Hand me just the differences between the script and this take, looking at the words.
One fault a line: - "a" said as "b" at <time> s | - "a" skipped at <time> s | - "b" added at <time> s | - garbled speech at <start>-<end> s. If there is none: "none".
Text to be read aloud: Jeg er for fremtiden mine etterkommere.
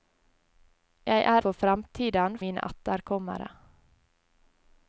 none